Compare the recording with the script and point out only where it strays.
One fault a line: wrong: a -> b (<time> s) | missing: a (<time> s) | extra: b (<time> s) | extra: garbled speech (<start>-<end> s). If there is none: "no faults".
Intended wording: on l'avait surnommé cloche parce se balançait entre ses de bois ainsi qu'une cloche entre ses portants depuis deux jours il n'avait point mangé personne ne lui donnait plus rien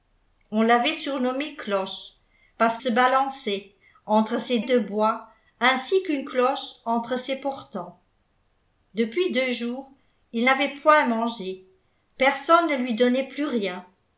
no faults